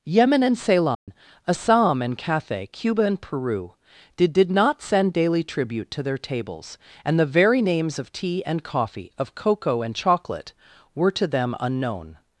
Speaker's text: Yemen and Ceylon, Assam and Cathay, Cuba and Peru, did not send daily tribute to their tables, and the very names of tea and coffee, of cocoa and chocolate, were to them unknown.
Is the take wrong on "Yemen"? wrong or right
right